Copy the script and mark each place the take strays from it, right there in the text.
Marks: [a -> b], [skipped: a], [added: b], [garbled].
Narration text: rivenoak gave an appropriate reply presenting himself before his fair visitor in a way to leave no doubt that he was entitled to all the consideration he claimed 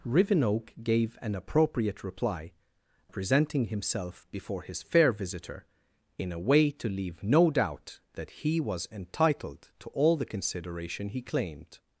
rivenoak gave an appropriate reply presenting himself before his fair visitor in a way to leave no doubt that he was entitled to all the consideration he claimed